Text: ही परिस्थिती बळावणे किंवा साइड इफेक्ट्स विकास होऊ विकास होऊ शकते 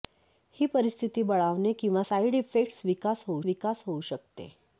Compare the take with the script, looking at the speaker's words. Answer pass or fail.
pass